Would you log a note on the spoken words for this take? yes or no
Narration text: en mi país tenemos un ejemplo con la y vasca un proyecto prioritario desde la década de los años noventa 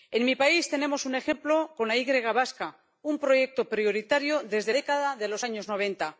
yes